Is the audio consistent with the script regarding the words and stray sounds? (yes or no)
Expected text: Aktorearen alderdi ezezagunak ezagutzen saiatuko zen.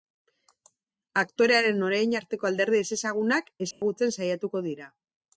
no